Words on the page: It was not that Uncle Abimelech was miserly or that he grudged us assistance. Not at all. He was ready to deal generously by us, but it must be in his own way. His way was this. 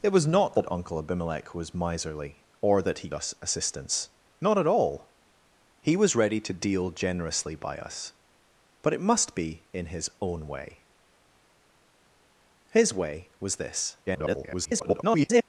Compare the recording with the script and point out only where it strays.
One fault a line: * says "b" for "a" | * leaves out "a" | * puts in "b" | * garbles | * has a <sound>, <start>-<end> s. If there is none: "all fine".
* leaves out "grudged"
* garbles